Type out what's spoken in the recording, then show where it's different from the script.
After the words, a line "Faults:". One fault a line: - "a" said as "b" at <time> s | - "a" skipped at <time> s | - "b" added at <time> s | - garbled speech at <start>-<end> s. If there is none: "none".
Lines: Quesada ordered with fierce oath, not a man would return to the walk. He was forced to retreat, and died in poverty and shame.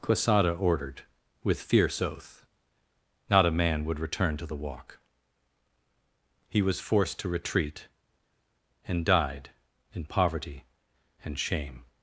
Quesada ordered with fierce oath, not a man would return to the walk. He was forced to retreat, and died in poverty and shame.
Faults:
none